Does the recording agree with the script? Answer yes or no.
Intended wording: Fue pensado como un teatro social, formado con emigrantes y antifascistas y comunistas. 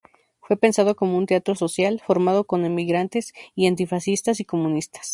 yes